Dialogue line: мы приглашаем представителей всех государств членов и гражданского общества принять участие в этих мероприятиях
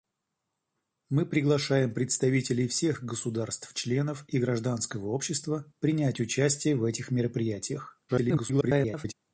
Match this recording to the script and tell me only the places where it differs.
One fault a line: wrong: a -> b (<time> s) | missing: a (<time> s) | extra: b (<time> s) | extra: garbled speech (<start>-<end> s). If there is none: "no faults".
extra: garbled speech (8.1-9.1 s)